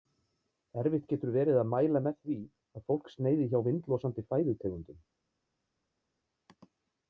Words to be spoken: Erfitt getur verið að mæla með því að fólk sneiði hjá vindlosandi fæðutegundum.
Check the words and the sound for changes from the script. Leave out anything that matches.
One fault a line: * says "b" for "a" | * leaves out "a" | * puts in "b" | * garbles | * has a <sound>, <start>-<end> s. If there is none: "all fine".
all fine